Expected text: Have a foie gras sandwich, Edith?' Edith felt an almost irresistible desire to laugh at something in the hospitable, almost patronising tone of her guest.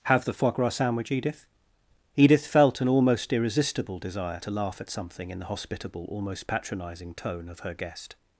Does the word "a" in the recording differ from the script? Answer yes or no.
yes